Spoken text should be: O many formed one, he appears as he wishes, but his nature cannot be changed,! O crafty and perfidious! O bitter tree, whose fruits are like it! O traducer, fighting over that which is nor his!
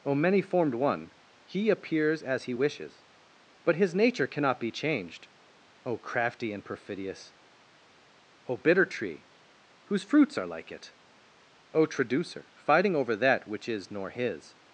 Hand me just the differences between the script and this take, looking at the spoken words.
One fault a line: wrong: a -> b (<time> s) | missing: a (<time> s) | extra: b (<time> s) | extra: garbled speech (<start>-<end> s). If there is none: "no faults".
no faults